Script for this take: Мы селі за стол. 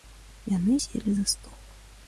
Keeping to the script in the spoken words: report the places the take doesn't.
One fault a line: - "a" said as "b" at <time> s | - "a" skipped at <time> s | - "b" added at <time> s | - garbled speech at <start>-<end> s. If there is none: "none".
- "Мы" said as "Яны" at 0.5 s